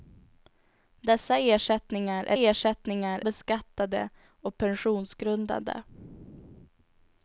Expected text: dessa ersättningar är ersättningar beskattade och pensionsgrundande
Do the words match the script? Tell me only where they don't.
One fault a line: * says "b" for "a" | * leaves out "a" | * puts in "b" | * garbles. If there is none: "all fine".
all fine